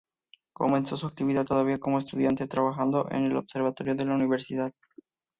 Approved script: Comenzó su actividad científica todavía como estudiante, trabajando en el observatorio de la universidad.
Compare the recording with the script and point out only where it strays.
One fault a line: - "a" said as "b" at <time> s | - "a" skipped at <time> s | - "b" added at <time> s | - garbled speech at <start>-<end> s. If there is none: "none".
- "científica" skipped at 1.4 s